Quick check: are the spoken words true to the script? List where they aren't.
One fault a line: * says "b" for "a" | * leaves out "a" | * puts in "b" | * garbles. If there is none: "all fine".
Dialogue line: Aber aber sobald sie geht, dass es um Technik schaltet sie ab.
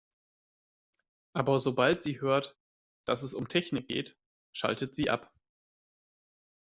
* leaves out "aber"
* says "hört" for "geht"
* puts in "geht"